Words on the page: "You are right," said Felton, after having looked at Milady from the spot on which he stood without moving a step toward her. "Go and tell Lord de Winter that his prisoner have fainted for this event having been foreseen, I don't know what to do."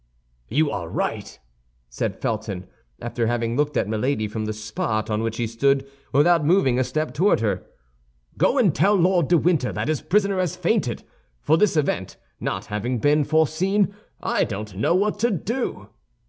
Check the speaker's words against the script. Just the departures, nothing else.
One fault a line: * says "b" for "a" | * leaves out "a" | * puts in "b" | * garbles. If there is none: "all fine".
* says "has" for "have"
* puts in "not"